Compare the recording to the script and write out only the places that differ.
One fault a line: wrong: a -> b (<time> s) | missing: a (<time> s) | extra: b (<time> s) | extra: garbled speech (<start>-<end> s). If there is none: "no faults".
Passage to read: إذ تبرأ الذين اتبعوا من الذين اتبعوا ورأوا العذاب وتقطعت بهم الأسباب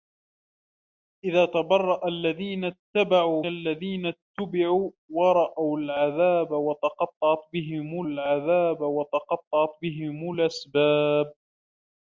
missing: من (3.5 s)
extra: العذاب وتقطعت بهم (8.1 s)